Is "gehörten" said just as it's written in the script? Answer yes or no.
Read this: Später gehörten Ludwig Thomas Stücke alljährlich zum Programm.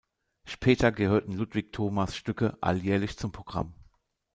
yes